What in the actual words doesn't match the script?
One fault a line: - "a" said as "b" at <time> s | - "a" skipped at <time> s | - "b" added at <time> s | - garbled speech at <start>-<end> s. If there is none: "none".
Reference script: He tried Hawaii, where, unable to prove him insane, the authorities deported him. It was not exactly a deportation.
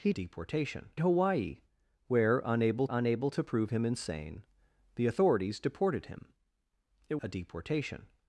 - "tried" said as "deportation" at 0.1 s
- "unable" added at 2.9 s
- "was not exactly" skipped at 7.2 s